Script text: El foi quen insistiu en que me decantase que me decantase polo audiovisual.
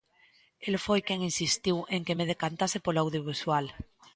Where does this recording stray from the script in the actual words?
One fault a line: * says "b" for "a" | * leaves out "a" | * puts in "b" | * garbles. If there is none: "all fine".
* leaves out "que me decantase"